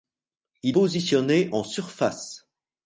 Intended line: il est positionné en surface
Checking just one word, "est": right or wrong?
wrong